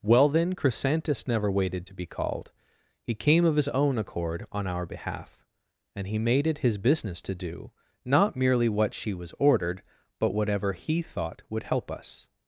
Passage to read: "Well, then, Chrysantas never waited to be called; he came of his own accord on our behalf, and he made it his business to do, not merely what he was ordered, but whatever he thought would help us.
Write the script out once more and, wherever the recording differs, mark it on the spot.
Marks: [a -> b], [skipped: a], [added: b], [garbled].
"Well, then, Chrysantas never waited to be called; he came of his own accord on our behalf, and he made it his business to do, not merely what [he -> she] was ordered, but whatever he thought would help us.